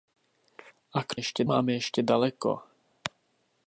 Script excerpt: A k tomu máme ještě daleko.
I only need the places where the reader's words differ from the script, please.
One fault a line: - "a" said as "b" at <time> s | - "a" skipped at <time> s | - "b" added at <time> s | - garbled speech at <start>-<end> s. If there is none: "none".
- "tomu" said as "ještě" at 1.1 s